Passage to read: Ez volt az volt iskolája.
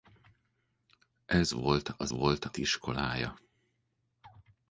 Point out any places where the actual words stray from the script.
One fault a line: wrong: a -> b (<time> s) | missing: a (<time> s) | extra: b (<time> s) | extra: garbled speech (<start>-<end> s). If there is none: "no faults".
no faults